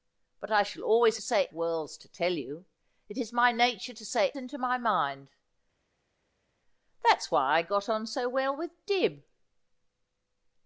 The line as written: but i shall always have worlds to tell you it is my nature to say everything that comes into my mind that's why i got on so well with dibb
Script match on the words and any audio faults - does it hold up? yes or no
no